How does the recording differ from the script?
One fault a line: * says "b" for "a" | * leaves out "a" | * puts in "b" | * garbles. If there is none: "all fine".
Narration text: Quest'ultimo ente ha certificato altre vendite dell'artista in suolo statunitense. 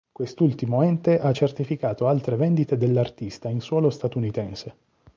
all fine